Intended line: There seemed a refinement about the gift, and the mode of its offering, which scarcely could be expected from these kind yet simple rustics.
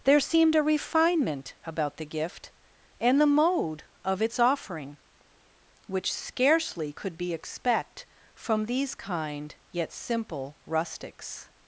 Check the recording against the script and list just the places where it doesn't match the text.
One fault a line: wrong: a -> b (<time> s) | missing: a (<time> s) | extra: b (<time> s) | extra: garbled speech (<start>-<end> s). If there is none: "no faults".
wrong: expected -> expect (7.3 s)